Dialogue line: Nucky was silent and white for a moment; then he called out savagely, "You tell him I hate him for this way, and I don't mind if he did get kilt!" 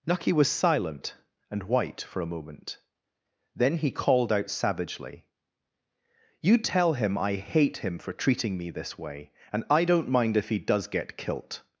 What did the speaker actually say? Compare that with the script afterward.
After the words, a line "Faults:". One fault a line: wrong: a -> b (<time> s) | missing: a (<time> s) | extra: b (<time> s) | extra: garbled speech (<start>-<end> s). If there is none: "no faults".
Nucky was silent and white for a moment; then he called out savagely, "You tell him I hate him for treating me this way, and I don't mind if he does get kilt!"
Faults:
extra: treating me (8.1 s)
wrong: did -> does (10.6 s)